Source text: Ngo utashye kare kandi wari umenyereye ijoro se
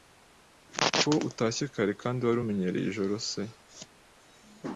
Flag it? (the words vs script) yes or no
yes